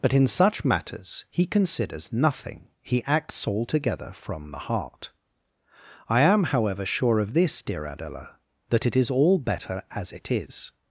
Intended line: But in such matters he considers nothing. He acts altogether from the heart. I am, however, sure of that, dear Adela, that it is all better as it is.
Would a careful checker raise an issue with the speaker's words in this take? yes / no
yes